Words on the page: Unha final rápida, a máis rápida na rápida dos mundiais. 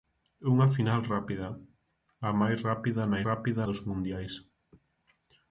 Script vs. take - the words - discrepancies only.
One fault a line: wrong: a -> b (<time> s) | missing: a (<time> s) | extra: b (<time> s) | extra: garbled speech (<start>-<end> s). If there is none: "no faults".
no faults